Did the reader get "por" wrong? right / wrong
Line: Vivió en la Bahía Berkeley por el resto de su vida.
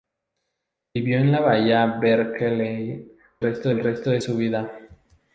wrong